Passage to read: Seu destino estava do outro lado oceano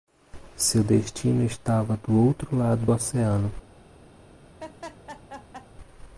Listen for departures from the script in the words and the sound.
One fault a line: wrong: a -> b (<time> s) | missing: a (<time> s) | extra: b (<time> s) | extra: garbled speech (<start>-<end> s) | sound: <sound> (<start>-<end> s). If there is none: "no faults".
sound: laugh (4.6-5.7 s)